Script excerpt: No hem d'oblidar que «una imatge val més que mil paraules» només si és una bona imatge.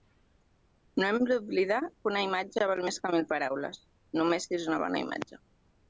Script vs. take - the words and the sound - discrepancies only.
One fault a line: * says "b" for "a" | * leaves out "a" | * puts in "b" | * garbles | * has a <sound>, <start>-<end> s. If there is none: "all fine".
all fine